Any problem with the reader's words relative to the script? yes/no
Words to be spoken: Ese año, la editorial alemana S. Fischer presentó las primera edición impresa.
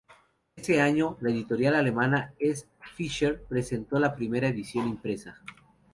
yes